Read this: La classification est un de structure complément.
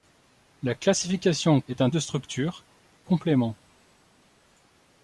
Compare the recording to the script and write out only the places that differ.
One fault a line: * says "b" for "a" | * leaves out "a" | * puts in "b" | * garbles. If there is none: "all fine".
all fine